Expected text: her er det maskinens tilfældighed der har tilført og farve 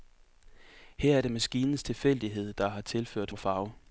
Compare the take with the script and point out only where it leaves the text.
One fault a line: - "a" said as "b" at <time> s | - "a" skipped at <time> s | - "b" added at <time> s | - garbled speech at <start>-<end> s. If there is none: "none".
none